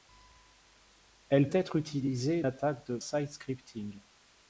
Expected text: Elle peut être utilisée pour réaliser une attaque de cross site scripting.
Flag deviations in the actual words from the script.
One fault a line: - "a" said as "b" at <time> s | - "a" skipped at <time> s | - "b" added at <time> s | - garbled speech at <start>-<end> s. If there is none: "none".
- "peut" skipped at 1.5 s
- "pour réaliser une" skipped at 2.4 s
- "cross" skipped at 3.0 s